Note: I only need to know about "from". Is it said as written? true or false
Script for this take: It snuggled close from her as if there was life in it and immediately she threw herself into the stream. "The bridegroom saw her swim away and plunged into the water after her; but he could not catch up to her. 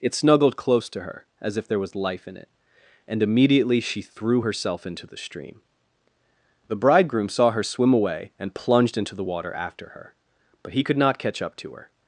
false